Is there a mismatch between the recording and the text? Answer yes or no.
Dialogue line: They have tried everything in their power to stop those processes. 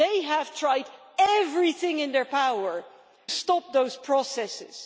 yes